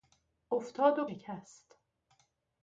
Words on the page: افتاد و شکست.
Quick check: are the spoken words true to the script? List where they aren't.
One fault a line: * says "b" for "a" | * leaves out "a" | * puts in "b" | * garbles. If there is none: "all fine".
all fine